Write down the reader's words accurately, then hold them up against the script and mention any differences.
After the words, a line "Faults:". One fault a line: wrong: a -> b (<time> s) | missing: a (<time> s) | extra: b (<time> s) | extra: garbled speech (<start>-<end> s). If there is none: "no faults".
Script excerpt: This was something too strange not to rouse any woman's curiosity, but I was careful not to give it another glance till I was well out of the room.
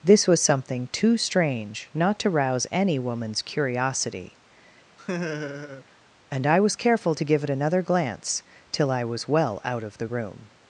This was something too strange not to rouse any woman's curiosity, and I was careful to give it another glance till I was well out of the room.
Faults:
wrong: but -> and (6.3 s)
missing: not (7.1 s)